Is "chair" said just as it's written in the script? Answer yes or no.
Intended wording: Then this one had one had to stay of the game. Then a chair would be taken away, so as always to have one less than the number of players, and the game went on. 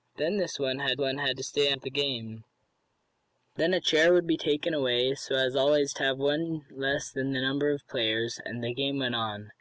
yes